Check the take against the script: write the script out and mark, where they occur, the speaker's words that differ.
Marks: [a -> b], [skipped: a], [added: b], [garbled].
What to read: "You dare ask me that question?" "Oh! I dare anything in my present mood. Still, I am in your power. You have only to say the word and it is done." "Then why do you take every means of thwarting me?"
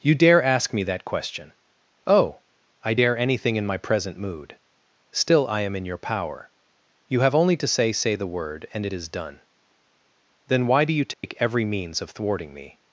"You dare ask me that question?" "Oh! I dare anything in my present mood. Still, I am in your power. You have only to say [added: say] the word and it is done." "Then why do you take every means of thwarting me?"